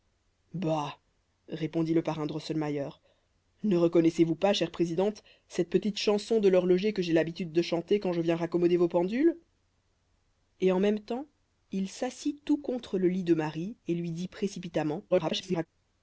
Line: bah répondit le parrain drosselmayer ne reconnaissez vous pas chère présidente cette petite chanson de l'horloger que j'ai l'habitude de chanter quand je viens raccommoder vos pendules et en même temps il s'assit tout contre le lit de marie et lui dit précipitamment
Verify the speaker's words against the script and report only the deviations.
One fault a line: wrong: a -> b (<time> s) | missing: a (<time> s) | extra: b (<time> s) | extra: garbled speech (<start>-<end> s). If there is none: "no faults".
extra: garbled speech (15.1-15.7 s)